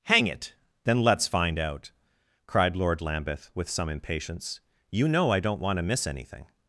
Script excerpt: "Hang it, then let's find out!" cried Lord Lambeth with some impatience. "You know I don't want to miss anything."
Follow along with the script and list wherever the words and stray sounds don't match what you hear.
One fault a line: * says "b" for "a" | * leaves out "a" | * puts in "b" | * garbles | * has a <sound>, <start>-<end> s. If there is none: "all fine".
all fine